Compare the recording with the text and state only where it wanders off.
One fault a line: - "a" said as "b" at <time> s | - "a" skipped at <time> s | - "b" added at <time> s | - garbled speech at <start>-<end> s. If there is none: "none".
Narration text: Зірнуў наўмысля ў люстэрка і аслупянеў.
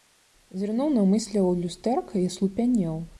none